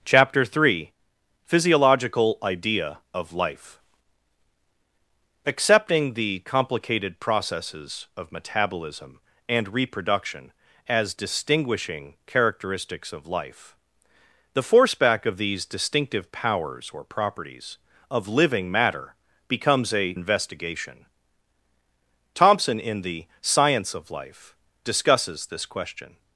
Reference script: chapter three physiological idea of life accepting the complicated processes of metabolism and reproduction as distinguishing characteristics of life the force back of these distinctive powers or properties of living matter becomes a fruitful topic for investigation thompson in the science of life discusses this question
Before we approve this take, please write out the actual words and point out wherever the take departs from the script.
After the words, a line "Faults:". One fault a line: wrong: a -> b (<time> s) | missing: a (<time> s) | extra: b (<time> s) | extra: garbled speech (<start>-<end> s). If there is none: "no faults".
chapter three physiological idea of life accepting the complicated processes of metabolism and reproduction as distinguishing characteristics of life the force back of these distinctive powers or properties of living matter becomes a investigation thompson in the science of life discusses this question
Faults:
missing: fruitful topic for (20.1 s)